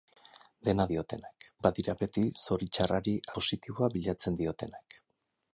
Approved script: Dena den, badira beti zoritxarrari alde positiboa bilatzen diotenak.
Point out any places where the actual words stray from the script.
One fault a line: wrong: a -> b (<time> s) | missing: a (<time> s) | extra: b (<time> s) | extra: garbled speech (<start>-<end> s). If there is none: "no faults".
wrong: den -> diotenak (0.9 s)
missing: alde (3.1 s)